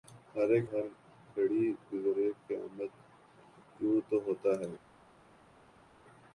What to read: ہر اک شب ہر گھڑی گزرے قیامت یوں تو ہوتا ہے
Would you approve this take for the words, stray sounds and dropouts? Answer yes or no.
no